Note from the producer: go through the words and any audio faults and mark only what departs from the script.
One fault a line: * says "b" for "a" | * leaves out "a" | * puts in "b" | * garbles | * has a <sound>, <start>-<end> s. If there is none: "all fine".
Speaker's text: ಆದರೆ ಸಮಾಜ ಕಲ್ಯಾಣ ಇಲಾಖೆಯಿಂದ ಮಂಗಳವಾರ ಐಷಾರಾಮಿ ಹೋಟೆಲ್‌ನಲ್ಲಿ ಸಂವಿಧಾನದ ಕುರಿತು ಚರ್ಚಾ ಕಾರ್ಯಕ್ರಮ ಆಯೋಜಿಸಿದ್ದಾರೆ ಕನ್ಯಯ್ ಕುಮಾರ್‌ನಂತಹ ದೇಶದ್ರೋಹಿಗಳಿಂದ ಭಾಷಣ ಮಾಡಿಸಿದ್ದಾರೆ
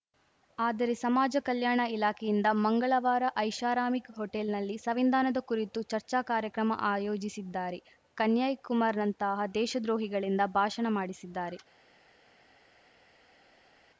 all fine